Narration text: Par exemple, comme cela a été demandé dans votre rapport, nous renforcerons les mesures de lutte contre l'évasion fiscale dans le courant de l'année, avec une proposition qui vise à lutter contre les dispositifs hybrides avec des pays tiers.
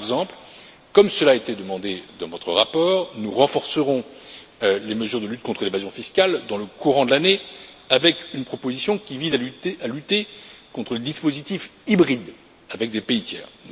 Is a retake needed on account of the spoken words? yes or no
no